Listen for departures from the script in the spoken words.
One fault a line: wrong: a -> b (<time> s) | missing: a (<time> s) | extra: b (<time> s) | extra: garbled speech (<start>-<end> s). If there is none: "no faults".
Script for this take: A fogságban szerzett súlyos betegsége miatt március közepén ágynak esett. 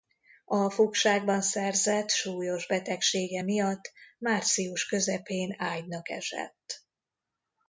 no faults